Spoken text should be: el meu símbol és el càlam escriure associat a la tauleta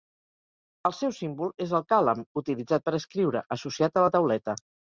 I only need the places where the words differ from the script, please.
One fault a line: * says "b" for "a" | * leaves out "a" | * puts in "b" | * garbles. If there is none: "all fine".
* says "seu" for "meu"
* puts in "utilitzat per"